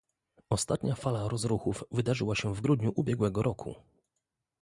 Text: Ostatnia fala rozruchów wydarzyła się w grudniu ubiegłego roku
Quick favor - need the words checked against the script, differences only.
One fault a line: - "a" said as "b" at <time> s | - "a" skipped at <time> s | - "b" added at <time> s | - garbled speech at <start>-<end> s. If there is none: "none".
none